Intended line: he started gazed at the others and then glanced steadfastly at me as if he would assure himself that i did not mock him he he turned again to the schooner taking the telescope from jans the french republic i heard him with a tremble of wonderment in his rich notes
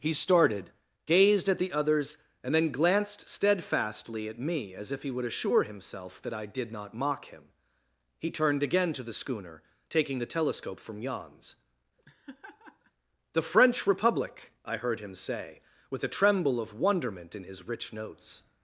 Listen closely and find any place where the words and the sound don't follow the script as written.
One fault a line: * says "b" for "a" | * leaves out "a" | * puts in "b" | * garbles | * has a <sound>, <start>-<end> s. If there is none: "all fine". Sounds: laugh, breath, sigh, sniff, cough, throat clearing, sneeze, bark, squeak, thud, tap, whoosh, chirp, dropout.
* leaves out "he"
* has a laugh, 12.0-12.9 s
* puts in "say"